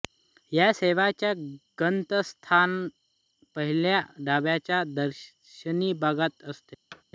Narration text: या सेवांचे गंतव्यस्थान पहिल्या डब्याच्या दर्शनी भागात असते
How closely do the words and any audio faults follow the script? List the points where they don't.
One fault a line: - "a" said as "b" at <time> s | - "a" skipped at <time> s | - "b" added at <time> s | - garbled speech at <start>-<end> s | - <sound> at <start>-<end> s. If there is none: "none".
- thud at 6.9-7.0 s